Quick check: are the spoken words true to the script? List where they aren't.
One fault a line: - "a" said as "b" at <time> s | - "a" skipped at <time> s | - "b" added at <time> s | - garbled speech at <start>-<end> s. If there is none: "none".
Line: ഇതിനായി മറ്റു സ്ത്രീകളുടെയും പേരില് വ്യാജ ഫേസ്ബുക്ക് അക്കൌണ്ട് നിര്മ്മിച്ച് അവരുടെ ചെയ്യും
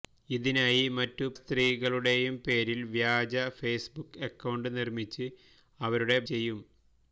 none